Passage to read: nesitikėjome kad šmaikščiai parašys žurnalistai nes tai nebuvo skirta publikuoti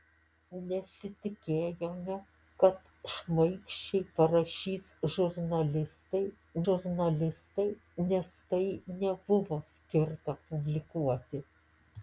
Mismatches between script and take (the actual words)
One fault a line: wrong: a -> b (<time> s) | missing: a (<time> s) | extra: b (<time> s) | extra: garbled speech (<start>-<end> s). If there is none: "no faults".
extra: žurnalistai (6.7 s)